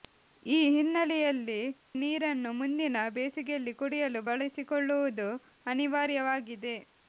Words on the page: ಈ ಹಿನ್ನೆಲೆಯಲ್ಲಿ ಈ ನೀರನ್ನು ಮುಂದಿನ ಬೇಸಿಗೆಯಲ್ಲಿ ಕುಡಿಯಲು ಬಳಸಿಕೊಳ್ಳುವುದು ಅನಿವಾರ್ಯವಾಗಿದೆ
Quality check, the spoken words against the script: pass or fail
fail